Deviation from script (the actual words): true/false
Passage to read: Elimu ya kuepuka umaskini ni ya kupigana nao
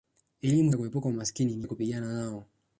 false